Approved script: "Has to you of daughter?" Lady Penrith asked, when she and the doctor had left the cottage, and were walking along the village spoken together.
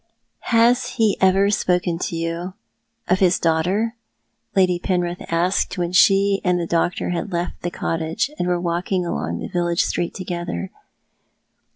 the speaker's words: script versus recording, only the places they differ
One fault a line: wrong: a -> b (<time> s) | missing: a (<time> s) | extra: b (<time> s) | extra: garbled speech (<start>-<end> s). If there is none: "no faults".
extra: he ever spoken (1.0 s)
extra: his (3.2 s)
wrong: spoken -> street (9.8 s)